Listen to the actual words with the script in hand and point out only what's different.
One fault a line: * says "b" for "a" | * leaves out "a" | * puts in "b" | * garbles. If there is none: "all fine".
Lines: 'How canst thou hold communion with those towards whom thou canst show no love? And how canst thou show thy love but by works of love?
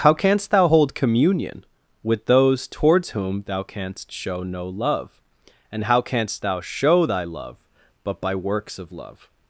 all fine